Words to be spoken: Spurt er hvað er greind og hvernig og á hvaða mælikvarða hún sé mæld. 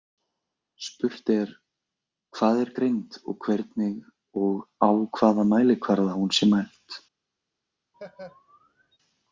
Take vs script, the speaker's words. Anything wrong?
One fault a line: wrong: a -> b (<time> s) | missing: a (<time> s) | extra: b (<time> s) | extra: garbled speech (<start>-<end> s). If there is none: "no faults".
no faults